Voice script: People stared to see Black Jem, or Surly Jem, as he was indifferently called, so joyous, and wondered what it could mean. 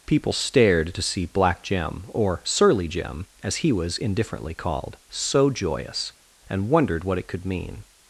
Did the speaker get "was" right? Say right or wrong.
right